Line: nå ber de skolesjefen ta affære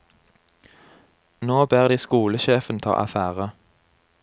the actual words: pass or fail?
pass